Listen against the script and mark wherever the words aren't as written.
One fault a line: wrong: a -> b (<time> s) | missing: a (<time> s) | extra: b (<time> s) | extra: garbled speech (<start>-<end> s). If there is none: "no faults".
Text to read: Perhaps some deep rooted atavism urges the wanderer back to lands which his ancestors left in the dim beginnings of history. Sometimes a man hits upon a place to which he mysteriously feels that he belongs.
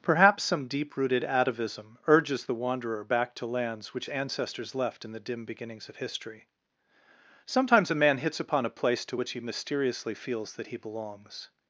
missing: his (4.1 s)